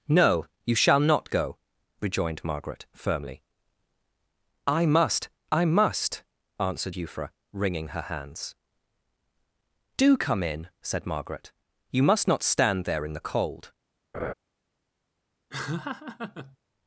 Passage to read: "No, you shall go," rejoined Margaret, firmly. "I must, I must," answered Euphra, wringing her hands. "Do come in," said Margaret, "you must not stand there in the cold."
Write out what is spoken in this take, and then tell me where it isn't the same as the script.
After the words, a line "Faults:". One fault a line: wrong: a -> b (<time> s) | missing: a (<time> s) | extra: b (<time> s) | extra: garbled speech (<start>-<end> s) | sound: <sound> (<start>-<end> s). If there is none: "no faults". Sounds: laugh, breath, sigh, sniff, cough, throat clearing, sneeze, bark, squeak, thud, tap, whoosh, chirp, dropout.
"No, you shall not go," rejoined Margaret, firmly. "I must, I must," answered Euphra, wringing her hands. "Do come in," said Margaret, "you must not stand there in the cold."
Faults:
extra: not (1.0 s)
sound: laugh (14.1-14.3 s)
sound: laugh (15.5-16.6 s)